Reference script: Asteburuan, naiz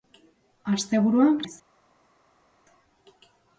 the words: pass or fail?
pass